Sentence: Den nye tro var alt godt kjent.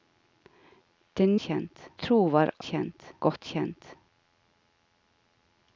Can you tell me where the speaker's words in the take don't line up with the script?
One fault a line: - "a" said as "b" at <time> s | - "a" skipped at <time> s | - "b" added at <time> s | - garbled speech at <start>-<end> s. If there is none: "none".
- "nye" said as "kjent" at 1.4 s
- "alt" said as "kjent" at 2.7 s